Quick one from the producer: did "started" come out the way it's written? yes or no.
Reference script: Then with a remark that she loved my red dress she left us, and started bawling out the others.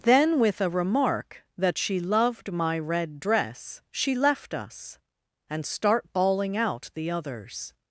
no